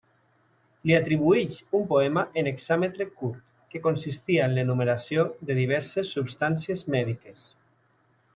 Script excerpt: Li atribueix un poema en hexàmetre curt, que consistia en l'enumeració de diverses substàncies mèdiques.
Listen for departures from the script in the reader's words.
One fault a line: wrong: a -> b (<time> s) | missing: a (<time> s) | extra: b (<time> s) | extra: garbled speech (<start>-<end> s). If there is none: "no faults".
no faults